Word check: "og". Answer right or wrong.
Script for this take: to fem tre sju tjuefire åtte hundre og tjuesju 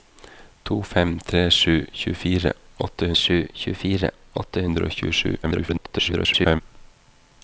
right